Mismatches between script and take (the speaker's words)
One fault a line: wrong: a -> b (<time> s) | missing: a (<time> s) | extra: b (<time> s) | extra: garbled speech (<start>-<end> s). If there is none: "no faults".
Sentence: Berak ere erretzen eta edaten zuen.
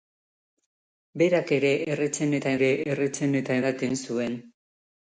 extra: ere erretzen eta (2.6 s)